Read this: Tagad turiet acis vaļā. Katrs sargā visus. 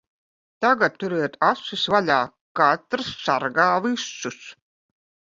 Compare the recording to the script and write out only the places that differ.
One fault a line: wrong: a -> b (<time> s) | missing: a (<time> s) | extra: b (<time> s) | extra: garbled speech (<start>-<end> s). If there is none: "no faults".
no faults